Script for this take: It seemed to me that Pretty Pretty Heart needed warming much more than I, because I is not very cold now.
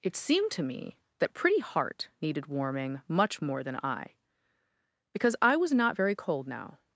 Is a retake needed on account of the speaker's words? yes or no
yes